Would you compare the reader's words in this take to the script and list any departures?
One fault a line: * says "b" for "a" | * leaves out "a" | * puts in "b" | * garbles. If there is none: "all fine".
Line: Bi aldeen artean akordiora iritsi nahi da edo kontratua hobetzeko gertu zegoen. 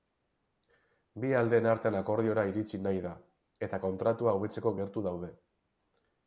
* says "eta" for "edo"
* says "daude" for "zegoen"